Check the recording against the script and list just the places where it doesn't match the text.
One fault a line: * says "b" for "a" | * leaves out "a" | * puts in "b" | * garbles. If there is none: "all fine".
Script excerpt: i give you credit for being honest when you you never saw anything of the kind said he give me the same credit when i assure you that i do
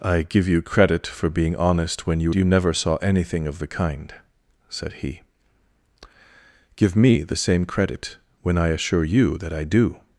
all fine